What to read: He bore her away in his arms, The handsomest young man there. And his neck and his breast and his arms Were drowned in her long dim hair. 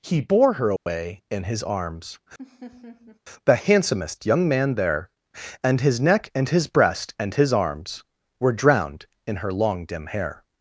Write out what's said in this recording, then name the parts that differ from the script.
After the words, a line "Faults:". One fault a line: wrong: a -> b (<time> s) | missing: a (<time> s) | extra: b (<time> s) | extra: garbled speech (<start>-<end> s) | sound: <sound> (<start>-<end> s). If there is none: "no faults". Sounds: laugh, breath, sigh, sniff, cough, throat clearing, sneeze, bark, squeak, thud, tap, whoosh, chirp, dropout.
He bore her away in his arms, The handsomest young man there. And his neck and his breast and his arms Were drowned in her long dim hair.
Faults:
sound: dropout (0.8-0.9 s)
sound: laugh (2.4-3.2 s)